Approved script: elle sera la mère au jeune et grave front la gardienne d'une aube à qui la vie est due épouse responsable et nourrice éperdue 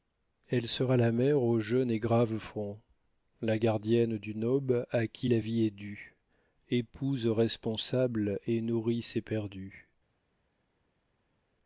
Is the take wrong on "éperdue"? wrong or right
right